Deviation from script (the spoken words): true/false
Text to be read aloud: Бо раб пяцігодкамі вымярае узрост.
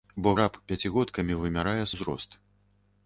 false